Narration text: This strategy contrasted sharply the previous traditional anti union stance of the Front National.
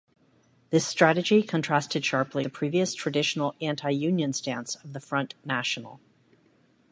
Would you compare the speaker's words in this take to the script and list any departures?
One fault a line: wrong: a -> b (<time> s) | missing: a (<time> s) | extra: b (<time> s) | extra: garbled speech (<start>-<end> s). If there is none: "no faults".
no faults